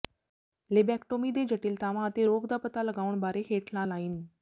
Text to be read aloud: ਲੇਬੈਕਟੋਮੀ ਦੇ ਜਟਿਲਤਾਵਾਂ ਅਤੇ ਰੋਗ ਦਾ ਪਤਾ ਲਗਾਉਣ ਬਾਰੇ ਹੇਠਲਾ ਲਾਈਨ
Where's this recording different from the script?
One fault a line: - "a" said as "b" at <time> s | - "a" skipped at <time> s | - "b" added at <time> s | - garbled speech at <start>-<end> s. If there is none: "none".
none